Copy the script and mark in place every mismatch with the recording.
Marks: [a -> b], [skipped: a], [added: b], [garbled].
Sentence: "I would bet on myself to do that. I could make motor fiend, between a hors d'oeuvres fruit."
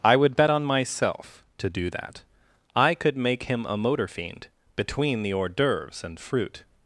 "I would bet on myself to do that. I could make [added: him a] motor fiend, between [a -> the] hors d'oeuvres [added: and] fruit."